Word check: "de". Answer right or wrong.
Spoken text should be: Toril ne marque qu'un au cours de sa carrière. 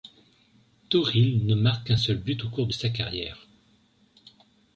right